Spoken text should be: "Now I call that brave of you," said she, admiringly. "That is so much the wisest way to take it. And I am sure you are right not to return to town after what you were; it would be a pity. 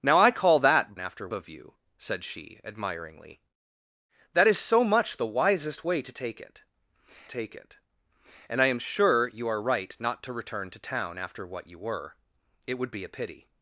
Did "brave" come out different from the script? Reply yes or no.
yes